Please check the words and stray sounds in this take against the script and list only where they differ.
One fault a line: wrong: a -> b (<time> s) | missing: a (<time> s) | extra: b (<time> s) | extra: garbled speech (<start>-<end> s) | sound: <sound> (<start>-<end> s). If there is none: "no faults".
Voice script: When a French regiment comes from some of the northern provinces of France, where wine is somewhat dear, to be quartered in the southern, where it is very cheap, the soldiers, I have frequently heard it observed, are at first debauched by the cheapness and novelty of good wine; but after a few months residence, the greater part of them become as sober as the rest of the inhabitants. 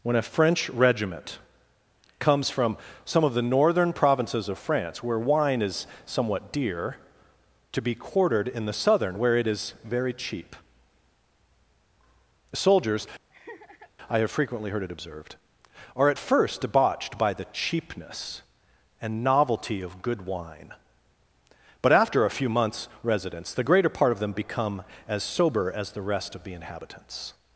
missing: the (10.6 s)
sound: laugh (13.3-13.9 s)